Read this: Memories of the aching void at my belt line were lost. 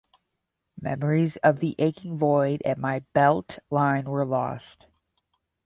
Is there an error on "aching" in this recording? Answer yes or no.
no